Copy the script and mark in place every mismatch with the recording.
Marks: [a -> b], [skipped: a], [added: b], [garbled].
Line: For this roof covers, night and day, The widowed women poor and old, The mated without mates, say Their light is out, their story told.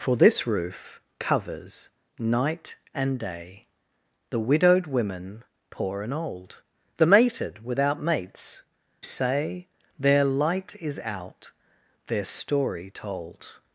For this roof covers, night and day, The widowed women poor and old, The mated without mates, say Their light is out, their story told.